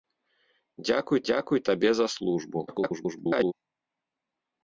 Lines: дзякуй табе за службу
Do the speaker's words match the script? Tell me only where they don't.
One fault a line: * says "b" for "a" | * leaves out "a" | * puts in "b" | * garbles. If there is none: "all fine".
* puts in "дзякуй"
* garbles